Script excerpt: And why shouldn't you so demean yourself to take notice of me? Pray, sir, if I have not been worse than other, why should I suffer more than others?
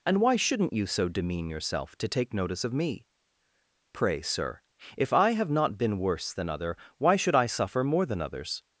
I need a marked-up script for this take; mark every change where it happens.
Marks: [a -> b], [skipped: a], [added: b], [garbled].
And why shouldn't you so demean yourself to take notice of me? Pray, sir, if I have not been worse than other, why should I suffer more than others?